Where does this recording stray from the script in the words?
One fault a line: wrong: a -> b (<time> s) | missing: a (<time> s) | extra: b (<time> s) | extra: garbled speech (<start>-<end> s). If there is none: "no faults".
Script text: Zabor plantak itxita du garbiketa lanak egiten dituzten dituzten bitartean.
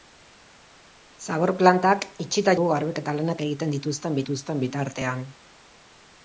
no faults